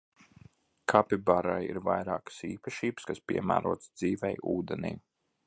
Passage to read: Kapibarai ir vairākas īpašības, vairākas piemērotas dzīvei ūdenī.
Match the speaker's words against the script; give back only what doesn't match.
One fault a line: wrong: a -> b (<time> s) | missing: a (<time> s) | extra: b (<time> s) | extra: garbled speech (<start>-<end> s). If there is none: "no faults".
wrong: vairākas -> kas (3.1 s)